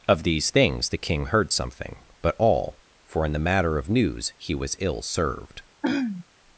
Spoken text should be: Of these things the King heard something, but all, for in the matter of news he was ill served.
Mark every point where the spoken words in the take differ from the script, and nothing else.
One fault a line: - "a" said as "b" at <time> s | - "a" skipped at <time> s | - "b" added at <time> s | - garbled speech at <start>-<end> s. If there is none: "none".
none